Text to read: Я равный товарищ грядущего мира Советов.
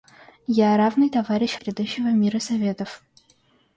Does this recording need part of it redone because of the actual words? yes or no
no